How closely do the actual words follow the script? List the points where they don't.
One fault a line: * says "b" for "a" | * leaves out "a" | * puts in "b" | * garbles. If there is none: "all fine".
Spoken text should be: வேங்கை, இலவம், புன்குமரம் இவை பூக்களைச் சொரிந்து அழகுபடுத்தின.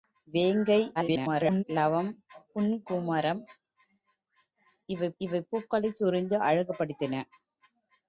* garbles
* puts in "இவை"